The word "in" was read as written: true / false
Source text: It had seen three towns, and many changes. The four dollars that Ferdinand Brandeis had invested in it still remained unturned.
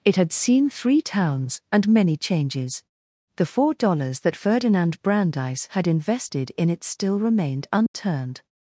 true